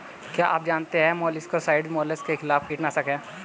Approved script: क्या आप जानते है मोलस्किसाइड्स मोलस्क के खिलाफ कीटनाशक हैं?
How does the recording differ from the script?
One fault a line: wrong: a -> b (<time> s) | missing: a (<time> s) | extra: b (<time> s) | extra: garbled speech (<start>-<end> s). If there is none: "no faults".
no faults